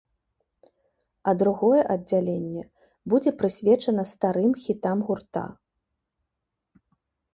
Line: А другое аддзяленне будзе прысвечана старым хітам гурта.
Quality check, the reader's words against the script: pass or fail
pass